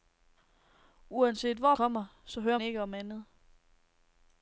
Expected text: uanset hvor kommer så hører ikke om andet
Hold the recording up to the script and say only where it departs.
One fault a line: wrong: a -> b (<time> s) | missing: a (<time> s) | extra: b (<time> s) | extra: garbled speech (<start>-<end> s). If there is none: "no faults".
no faults